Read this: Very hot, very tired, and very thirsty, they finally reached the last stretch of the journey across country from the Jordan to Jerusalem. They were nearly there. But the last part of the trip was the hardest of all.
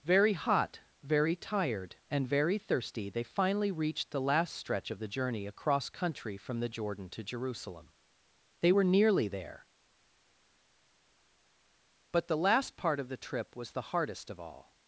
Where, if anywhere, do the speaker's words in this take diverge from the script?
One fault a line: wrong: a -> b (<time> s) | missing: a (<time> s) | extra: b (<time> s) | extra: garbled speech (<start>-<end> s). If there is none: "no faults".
no faults